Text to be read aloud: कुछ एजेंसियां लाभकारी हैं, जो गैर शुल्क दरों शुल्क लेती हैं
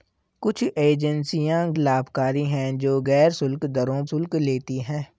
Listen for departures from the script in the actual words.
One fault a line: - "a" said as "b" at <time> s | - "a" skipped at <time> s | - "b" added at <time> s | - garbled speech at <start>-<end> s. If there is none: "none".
none